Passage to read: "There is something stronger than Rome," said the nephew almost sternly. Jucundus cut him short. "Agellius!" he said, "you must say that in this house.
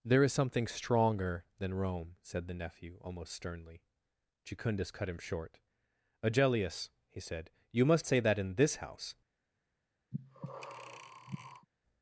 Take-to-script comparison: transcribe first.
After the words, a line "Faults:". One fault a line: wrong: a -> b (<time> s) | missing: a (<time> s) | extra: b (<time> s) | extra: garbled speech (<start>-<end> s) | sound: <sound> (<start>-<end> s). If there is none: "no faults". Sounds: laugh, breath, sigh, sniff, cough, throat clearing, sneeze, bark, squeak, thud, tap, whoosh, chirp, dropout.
"There is something stronger than Rome," said the nephew almost sternly. Jucundus cut him short. "Agellius!" he said, "you must say that in this house.
Faults:
sound: breath (10.1-11.7 s)